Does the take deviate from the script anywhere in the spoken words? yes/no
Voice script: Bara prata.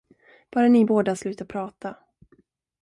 yes